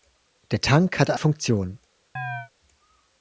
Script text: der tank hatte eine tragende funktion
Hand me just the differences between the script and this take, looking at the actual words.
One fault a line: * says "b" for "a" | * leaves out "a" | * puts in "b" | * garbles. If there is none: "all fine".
* leaves out "eine tragende"